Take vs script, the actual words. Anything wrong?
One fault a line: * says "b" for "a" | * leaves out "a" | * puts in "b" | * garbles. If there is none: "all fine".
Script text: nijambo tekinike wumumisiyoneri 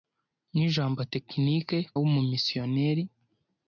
all fine